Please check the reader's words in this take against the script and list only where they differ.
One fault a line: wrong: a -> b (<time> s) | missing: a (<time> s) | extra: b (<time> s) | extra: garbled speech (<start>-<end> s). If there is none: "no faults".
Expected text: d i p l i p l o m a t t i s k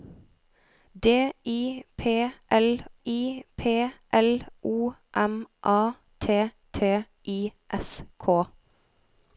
no faults